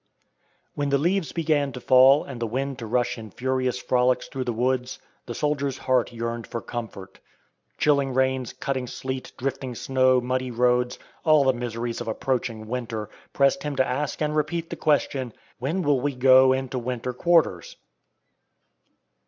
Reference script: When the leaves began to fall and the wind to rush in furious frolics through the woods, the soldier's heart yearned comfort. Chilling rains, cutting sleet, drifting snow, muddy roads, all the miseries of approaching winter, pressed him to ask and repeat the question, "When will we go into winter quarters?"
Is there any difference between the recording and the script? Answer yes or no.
yes